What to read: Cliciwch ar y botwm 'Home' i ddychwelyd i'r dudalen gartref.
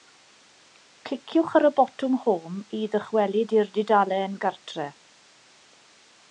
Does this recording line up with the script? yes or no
yes